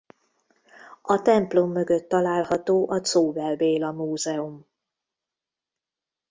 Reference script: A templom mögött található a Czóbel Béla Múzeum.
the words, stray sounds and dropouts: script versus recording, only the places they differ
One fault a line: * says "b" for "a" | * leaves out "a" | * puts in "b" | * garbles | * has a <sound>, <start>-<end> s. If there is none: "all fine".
all fine